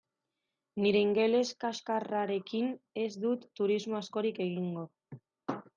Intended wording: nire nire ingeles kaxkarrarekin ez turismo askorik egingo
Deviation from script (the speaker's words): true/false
true